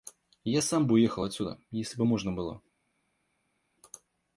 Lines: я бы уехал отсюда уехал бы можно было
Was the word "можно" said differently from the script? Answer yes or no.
no